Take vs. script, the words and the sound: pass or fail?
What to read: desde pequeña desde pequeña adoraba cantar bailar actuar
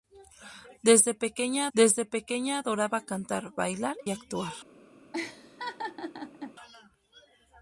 fail